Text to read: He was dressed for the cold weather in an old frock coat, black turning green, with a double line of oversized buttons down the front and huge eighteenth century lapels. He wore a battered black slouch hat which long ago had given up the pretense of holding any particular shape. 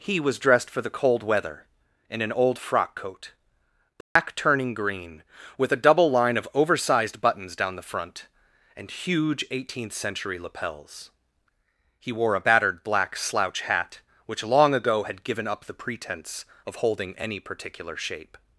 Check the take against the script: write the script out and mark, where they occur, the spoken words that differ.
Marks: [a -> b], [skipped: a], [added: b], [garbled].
He was dressed for the cold weather in an old frock coat, black turning green, with a double line of oversized buttons down the front and huge eighteenth century lapels. He wore a battered black slouch hat which long ago had given up the pretense of holding any particular shape.